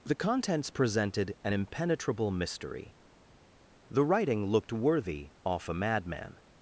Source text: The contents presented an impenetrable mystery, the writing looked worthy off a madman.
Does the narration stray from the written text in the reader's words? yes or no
no